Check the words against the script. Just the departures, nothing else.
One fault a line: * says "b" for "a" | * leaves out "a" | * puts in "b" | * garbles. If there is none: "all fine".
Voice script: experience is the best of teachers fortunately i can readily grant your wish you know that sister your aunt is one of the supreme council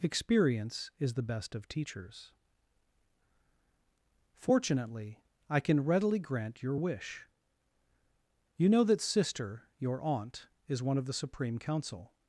all fine